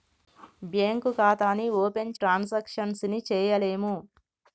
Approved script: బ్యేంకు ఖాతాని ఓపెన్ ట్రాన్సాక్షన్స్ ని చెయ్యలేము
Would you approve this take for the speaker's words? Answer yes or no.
yes